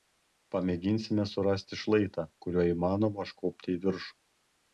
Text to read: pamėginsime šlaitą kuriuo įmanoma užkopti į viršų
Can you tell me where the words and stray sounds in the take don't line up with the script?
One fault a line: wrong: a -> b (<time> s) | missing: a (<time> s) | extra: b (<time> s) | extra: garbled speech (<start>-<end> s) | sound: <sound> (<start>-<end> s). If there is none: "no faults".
extra: surasti (1.3 s)